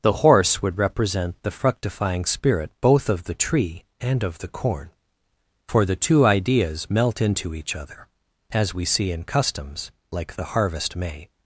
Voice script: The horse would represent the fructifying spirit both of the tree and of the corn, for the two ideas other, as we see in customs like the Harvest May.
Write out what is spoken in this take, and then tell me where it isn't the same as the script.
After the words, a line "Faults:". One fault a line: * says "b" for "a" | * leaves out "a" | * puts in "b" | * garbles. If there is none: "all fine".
The horse would represent the fructifying spirit both of the tree and of the corn, for the two ideas melt into each other, as we see in customs like the Harvest May.
Faults:
* puts in "melt into each"